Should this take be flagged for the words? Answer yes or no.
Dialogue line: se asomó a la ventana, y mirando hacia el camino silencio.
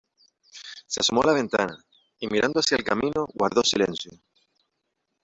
yes